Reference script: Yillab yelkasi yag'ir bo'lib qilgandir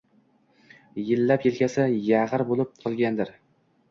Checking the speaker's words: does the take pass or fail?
pass